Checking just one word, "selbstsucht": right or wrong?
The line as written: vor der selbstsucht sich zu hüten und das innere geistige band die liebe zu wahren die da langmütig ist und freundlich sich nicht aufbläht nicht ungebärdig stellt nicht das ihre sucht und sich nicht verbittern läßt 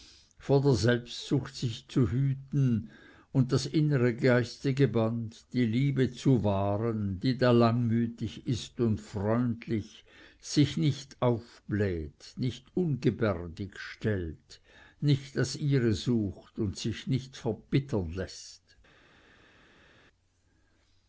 right